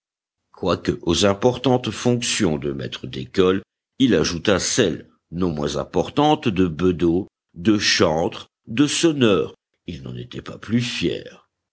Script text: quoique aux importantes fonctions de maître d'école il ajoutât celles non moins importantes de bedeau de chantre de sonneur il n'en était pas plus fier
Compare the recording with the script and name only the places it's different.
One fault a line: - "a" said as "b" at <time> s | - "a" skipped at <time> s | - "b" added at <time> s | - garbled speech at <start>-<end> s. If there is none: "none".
none